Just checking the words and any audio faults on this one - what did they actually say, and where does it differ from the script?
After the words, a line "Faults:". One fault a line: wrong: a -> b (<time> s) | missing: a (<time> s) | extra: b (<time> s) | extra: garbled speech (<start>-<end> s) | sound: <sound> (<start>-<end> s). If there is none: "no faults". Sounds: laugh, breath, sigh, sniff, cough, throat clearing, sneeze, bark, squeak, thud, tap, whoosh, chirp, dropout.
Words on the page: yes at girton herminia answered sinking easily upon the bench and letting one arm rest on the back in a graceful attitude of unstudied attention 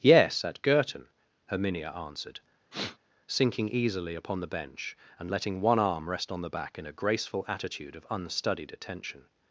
yes at girton herminia answered sinking easily upon the bench and letting one arm rest on the back in a graceful attitude of unstudied attention
Faults:
sound: sniff (2.7-3.0 s)